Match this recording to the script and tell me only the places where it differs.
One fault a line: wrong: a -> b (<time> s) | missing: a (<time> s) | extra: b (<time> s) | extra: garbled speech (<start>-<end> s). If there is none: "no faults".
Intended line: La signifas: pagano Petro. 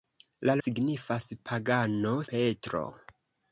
no faults